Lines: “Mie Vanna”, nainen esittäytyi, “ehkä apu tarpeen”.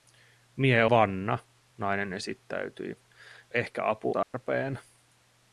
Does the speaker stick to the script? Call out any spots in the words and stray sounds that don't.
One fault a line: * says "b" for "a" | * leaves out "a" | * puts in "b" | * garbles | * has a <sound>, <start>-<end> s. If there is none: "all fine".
* has a dropout, 4.2-4.3 s